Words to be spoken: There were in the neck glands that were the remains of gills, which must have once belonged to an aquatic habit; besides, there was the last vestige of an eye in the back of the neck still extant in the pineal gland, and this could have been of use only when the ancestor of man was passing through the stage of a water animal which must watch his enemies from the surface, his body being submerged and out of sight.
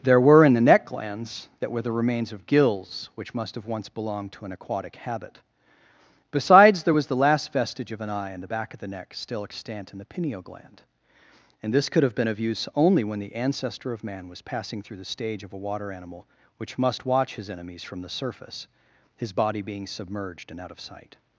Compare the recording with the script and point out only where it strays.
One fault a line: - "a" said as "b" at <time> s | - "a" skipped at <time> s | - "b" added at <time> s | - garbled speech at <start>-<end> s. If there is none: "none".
none